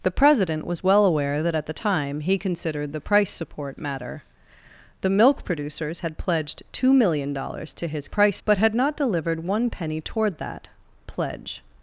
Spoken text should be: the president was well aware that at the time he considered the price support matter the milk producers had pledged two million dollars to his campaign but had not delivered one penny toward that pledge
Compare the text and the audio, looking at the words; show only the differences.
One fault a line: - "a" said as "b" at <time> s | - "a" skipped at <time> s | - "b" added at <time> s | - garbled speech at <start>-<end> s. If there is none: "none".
- "campaign" said as "price" at 8.1 s